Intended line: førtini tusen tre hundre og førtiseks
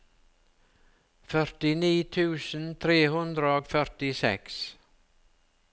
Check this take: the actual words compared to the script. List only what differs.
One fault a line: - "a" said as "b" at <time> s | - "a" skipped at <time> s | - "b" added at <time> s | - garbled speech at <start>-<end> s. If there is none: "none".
none